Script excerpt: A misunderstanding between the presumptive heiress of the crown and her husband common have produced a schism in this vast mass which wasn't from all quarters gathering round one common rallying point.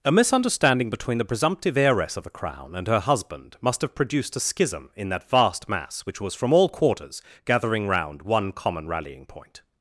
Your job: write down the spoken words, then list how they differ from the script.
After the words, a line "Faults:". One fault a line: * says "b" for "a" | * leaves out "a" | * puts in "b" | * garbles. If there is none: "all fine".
A misunderstanding between the presumptive heiress of the crown and her husband must have produced a schism in that vast mass which was from all quarters gathering round one common rallying point.
Faults:
* says "must" for "common"
* says "that" for "this"
* says "was" for "wasn't"